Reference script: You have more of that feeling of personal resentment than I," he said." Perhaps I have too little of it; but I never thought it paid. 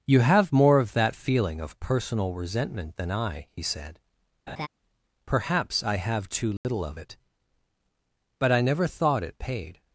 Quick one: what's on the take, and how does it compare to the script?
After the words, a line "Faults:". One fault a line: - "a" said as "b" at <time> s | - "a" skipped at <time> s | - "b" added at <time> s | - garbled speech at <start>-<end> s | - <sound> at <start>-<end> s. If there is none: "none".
You have more of that feeling of personal resentment than I," he said." Perhaps I have too little of it; but I never thought it paid.
Faults:
- laugh at 4.5-4.7 s
- dropout at 6.6-6.6 s